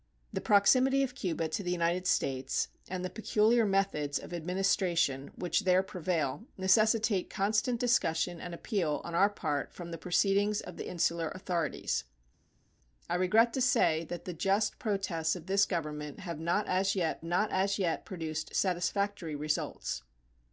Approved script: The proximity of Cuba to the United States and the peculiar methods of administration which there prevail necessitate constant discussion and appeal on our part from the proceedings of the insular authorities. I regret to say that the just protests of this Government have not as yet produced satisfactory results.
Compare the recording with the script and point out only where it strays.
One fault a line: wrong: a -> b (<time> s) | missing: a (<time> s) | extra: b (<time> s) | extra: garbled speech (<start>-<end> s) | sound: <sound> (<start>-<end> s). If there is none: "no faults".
extra: not as yet (17.2 s)